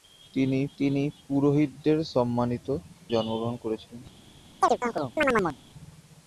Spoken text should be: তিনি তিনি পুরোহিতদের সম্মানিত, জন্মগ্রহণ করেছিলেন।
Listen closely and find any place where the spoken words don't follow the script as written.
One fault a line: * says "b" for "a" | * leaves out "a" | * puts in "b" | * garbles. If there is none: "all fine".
all fine